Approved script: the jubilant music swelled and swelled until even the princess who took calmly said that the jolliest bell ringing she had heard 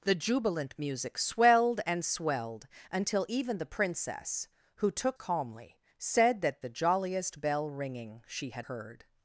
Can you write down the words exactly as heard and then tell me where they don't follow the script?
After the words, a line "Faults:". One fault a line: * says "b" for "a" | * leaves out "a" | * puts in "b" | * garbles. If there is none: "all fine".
the jubilant music swelled and swelled until even the princess who took calmly said that the jolliest bell ringing she had heard
Faults:
all fine